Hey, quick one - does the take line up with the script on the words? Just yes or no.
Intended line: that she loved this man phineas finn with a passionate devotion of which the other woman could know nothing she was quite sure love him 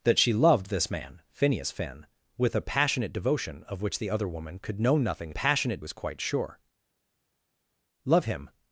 no